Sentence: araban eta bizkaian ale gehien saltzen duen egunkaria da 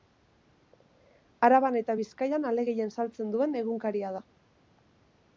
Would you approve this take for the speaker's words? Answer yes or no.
yes